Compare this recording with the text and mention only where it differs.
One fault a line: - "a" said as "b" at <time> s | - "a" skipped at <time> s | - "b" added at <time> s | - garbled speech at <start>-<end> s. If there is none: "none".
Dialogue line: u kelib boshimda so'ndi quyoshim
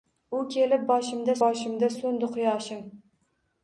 - "boshimda" added at 1.4 s